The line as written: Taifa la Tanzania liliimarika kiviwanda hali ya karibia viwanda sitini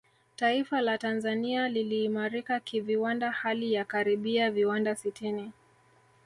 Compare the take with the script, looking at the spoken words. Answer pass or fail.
pass